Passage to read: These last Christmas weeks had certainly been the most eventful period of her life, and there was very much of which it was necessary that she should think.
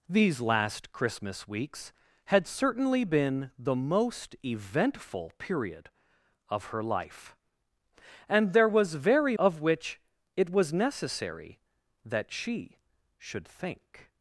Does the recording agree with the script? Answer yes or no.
no